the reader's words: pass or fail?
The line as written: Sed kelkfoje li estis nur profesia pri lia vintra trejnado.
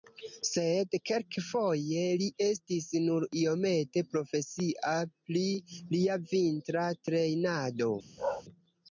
fail